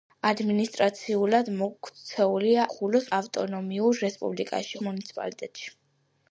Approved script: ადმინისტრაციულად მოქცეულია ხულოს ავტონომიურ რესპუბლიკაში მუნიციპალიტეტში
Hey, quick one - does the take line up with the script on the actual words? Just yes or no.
yes